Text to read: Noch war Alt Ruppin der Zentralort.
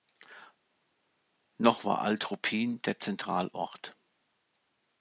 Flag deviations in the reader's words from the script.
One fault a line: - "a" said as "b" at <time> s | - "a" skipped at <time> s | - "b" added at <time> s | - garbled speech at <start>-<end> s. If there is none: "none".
none